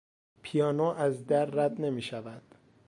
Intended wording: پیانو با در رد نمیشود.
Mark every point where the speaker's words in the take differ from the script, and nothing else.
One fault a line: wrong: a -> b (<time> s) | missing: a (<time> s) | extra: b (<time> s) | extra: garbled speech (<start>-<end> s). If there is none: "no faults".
wrong: با -> از (0.8 s)